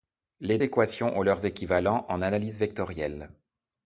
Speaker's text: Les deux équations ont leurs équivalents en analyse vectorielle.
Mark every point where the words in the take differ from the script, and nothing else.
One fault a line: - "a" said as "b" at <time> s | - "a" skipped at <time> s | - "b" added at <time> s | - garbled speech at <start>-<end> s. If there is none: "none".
- "deux" skipped at 0.6 s